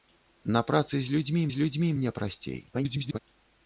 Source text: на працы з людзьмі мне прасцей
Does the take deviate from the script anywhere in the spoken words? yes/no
yes